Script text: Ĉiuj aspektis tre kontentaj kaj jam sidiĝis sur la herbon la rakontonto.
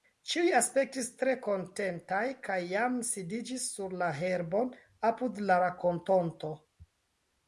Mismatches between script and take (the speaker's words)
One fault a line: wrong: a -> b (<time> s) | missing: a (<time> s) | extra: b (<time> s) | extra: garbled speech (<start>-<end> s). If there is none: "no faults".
extra: apud (5.1 s)